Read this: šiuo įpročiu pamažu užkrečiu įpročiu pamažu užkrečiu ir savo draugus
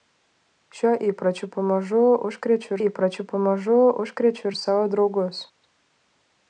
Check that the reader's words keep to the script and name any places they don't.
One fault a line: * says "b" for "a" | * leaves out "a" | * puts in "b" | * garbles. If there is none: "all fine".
all fine